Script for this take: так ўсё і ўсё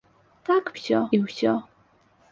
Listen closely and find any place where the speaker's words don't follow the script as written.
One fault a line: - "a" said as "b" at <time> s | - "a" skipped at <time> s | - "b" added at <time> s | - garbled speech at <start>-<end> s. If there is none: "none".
none